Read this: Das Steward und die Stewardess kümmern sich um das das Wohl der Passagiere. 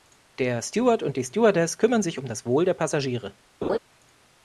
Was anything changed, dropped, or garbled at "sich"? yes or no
no